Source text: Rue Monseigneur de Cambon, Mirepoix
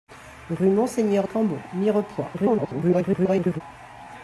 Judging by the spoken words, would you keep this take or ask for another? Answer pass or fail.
fail